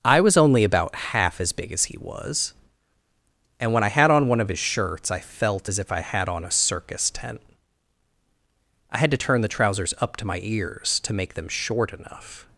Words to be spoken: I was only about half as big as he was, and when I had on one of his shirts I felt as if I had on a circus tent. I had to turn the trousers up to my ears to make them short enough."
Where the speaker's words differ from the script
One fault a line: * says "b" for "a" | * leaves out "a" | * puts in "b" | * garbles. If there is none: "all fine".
all fine